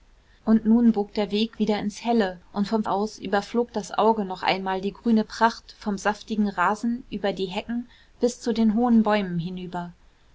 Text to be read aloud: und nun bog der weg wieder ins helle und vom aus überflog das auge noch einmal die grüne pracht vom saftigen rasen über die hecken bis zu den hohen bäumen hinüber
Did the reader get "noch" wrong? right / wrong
right